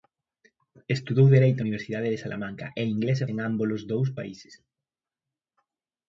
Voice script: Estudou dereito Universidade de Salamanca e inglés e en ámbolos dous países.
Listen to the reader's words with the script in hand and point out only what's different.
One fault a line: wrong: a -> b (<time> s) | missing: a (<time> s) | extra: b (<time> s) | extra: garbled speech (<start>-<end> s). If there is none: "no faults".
no faults